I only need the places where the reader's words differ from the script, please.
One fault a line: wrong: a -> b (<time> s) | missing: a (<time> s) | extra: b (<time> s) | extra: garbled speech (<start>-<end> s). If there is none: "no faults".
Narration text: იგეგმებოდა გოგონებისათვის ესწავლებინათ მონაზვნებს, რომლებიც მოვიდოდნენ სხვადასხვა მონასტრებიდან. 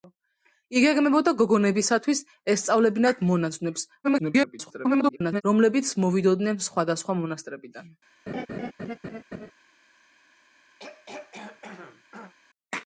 extra: garbled speech (4.0-5.4 s)